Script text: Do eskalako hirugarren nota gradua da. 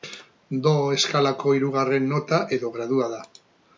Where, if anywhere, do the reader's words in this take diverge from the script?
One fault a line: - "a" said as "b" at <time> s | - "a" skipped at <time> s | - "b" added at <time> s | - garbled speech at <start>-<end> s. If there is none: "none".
- "edo" added at 2.6 s